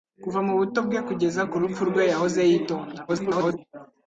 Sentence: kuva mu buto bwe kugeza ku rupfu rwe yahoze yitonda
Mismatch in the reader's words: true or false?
true